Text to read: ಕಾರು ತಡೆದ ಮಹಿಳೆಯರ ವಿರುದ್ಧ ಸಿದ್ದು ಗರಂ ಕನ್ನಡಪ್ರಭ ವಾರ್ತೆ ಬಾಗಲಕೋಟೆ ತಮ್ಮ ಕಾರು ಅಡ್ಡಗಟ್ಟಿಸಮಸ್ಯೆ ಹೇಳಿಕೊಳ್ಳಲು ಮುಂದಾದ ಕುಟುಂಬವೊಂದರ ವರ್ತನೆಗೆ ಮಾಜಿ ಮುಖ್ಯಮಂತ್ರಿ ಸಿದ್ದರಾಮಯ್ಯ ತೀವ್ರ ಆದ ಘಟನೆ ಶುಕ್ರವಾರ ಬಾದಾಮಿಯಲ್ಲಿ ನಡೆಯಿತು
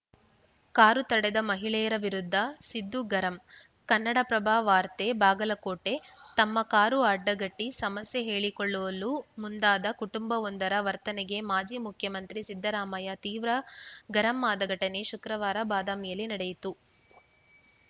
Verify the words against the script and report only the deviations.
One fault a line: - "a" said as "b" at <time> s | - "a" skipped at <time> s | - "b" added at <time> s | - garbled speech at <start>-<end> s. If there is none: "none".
- "ಗರಂ" added at 14.1 s